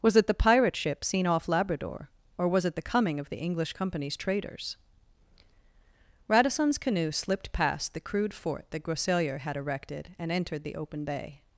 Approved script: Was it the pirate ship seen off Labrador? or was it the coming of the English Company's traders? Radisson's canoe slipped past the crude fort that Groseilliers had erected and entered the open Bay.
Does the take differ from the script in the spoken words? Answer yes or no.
no